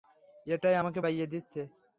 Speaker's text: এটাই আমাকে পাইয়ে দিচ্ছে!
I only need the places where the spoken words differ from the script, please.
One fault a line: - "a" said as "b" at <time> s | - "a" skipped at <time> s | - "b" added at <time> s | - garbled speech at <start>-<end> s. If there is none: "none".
none